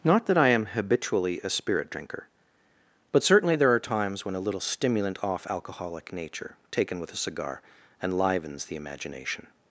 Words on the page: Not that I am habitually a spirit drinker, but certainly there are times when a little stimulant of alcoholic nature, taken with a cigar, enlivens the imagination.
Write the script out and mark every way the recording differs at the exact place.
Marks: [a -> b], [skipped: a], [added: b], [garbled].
Not that I am habitually a spirit drinker, but certainly there are times when a little stimulant [of -> off] alcoholic nature, taken with a cigar, enlivens the imagination.